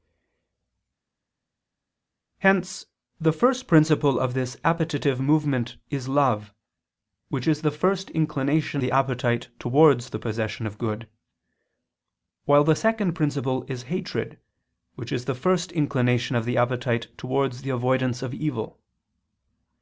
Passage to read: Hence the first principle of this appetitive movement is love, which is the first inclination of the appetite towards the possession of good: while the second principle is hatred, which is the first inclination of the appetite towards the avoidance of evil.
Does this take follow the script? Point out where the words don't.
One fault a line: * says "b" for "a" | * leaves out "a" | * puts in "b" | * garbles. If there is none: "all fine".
* leaves out "of"